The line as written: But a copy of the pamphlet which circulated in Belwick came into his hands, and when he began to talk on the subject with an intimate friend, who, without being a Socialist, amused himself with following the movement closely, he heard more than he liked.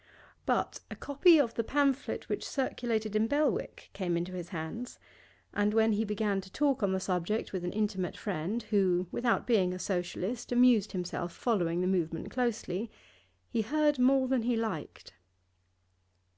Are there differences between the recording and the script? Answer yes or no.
yes